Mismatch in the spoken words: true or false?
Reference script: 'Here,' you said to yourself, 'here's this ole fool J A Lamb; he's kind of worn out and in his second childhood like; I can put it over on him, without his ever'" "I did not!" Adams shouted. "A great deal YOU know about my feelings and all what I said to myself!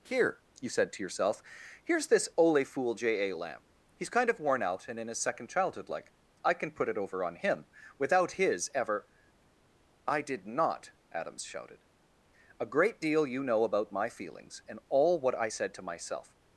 false